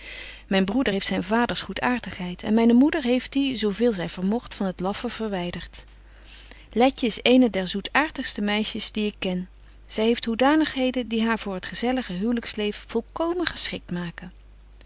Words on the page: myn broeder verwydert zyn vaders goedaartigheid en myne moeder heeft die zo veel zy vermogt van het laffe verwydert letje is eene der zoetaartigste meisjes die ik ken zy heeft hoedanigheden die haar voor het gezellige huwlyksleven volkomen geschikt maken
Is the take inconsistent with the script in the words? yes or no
yes